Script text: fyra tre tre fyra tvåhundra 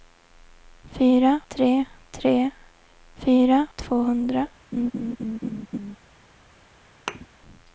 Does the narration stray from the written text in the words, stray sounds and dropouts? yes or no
yes